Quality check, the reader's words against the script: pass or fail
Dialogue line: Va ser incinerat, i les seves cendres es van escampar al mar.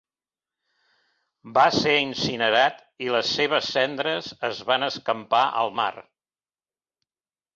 pass